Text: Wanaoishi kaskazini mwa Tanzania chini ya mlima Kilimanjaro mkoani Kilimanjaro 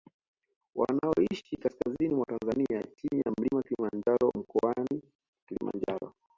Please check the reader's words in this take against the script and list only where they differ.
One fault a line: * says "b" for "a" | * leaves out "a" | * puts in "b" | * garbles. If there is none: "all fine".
all fine